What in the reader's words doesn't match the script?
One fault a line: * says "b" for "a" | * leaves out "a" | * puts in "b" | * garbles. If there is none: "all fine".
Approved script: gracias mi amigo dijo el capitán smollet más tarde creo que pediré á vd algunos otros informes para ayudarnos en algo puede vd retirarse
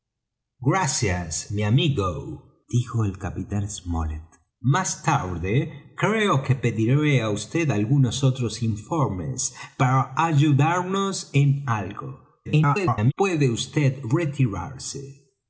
* garbles